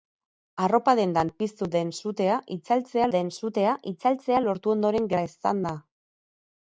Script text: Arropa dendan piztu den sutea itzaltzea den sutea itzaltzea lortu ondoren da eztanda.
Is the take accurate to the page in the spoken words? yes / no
yes